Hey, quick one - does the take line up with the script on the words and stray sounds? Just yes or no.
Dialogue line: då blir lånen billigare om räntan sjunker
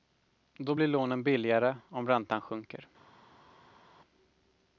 yes